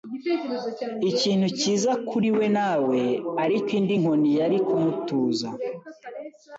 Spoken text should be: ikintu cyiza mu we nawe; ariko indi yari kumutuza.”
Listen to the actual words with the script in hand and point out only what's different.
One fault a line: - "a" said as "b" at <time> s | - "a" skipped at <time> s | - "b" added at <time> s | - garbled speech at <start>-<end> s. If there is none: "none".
- "mu" said as "kuri" at 2.1 s
- "nkoni" added at 4.0 s